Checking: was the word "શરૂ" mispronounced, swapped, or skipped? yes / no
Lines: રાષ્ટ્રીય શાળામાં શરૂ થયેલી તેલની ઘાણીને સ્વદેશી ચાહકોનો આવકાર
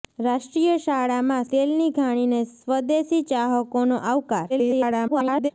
yes